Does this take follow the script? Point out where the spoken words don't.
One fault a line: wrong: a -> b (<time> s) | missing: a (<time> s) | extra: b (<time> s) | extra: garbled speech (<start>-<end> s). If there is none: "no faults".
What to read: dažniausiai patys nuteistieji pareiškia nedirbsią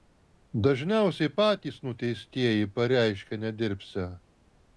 no faults